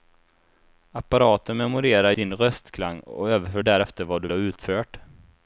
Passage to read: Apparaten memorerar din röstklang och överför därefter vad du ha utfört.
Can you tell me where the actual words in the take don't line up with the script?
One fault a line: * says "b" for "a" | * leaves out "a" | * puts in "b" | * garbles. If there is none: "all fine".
all fine